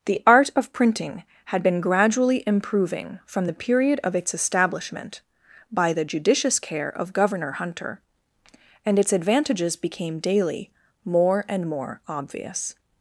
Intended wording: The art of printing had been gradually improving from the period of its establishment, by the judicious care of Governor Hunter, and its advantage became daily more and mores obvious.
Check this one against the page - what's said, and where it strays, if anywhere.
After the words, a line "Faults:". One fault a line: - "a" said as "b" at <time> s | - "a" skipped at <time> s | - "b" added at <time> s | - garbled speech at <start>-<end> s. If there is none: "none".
The art of printing had been gradually improving from the period of its establishment, by the judicious care of Governor Hunter, and its advantages became daily more and more obvious.
Faults:
- "advantage" said as "advantages" at 9.1 s
- "mores" said as "more" at 11.7 s